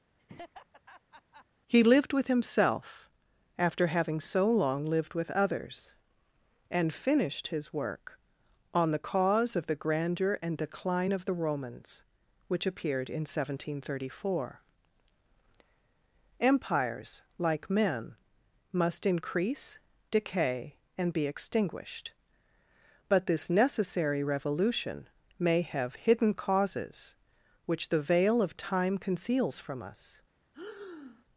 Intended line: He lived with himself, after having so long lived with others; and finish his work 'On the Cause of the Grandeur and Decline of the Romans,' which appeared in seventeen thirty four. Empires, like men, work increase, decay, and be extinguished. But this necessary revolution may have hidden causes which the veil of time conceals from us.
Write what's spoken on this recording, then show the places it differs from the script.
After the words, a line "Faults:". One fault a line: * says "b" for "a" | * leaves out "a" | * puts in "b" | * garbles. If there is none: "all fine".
He lived with himself, after having so long lived with others; and finished his work 'On the Cause of the Grandeur and Decline of the Romans,' which appeared in seventeen thirty four. Empires, like men, must increase, decay, and be extinguished. But this necessary revolution may have hidden causes which the veil of time conceals from us.
Faults:
* says "finished" for "finish"
* says "must" for "work"